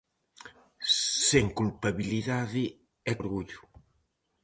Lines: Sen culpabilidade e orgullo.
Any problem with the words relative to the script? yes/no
no